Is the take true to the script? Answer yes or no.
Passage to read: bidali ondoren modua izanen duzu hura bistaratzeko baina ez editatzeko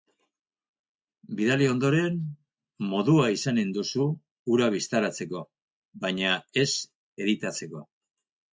yes